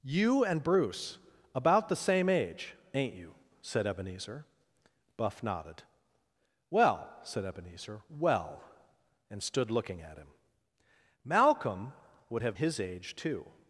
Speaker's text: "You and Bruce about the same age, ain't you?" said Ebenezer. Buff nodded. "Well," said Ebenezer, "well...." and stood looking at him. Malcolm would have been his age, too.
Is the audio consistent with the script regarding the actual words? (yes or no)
no